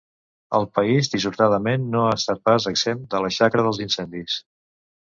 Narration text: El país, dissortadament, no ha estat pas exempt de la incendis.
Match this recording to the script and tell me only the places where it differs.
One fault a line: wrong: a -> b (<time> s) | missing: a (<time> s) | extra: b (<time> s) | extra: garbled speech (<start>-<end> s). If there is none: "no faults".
extra: xacra dels (3.4 s)